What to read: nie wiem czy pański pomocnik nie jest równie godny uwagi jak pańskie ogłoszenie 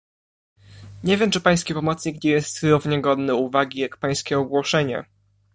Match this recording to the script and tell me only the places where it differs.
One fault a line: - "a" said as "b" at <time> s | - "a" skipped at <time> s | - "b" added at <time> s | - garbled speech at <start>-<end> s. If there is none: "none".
none